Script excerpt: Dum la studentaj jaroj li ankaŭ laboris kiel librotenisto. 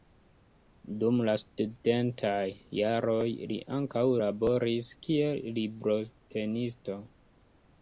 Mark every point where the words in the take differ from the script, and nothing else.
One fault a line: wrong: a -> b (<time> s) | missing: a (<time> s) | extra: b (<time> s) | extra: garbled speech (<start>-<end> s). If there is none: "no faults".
no faults